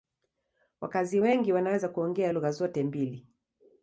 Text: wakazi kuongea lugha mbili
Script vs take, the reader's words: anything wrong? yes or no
yes